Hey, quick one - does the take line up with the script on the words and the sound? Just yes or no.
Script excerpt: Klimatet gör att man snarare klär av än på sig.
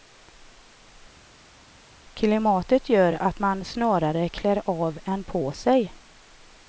yes